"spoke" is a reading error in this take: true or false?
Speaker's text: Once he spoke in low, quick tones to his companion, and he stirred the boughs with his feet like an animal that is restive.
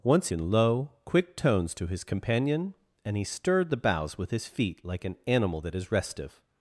true